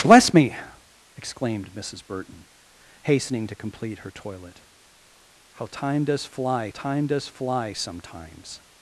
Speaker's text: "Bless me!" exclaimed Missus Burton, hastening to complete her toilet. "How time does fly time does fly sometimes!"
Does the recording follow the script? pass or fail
pass